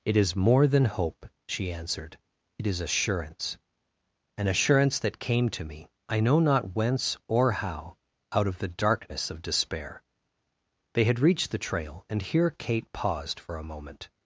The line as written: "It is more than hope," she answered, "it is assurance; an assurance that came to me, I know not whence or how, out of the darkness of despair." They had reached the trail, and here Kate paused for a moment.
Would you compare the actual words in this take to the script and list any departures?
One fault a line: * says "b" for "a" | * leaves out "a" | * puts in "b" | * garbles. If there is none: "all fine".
all fine